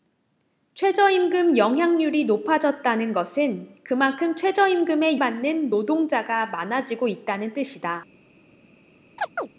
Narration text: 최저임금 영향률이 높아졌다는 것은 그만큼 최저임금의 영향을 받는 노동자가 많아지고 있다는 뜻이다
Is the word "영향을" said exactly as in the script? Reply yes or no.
no